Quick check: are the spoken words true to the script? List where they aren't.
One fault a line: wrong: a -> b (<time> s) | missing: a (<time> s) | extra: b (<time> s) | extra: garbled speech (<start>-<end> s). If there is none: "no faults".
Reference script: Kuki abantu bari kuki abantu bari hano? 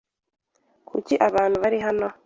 missing: kuki abantu bari (1.8 s)